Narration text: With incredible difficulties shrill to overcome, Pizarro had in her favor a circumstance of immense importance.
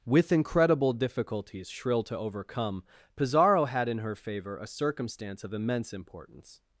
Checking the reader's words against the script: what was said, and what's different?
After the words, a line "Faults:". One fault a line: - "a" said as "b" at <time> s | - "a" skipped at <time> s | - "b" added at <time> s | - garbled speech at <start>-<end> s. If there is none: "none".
With incredible difficulties shrill to overcome, Pizarro had in her favor a circumstance of immense importance.
Faults:
none